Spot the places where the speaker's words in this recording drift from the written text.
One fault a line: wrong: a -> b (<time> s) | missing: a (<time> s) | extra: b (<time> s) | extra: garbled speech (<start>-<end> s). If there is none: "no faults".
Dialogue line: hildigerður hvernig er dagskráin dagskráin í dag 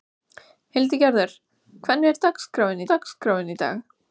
no faults